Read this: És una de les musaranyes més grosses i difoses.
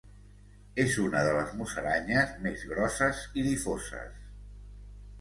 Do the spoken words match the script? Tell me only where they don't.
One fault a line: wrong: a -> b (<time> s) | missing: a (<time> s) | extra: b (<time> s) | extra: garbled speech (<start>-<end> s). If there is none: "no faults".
no faults